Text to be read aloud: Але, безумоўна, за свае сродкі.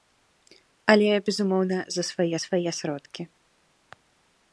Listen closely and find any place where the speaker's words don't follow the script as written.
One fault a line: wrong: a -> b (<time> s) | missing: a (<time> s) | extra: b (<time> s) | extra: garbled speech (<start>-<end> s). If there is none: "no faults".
extra: свае (2.4 s)